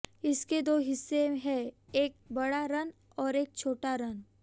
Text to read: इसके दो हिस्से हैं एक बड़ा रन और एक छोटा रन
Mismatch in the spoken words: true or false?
false